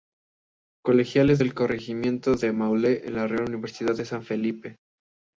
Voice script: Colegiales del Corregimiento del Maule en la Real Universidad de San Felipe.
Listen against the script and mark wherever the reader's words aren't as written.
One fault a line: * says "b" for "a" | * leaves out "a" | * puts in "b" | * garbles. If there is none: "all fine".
all fine